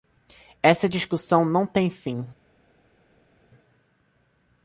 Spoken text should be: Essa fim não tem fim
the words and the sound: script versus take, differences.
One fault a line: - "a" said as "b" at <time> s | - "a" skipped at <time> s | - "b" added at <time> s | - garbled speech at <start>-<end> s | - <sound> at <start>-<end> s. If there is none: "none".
- "fim" said as "discussão" at 0.9 s